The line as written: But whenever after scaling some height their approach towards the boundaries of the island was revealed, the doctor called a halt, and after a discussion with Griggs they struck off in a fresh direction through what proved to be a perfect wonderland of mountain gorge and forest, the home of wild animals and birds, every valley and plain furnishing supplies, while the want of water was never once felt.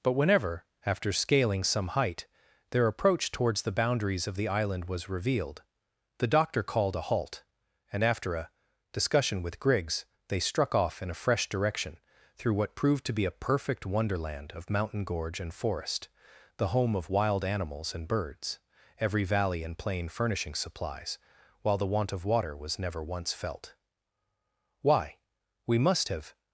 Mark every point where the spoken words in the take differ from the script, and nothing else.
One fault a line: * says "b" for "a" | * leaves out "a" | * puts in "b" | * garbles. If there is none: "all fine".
* puts in "Why we must have"